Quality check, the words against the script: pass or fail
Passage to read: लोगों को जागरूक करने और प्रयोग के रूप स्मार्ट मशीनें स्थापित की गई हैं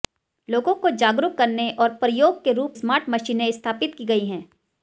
pass